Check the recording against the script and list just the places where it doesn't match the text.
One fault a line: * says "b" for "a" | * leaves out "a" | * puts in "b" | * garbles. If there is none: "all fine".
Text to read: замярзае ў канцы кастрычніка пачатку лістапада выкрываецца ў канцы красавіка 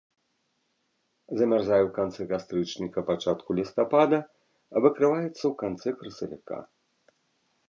all fine